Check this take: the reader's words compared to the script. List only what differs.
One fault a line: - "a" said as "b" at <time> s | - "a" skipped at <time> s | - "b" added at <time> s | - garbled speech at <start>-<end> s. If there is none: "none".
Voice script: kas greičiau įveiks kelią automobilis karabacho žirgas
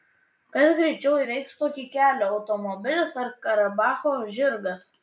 - "tokį" added at 1.6 s
- "ar" added at 3.3 s